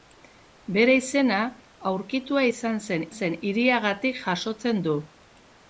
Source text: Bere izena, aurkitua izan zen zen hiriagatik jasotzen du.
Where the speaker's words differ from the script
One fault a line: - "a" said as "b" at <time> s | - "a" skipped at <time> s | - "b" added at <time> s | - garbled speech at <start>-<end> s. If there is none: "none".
none